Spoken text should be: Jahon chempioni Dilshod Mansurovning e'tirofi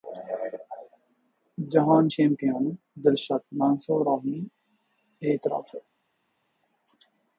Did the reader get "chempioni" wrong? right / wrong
right